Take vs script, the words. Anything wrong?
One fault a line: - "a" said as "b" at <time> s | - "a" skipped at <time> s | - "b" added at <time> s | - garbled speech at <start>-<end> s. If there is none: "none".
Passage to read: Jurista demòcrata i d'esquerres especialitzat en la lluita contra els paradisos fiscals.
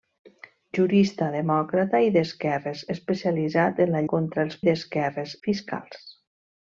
- "lluita" skipped at 4.0 s
- "paradisos" said as "d'esquerres" at 4.7 s